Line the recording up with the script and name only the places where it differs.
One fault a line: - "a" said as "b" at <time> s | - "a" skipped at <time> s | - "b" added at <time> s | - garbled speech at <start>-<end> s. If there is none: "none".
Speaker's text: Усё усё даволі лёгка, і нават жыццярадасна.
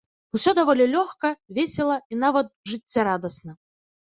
- "усё" skipped at 0.5 s
- "весела" added at 1.6 s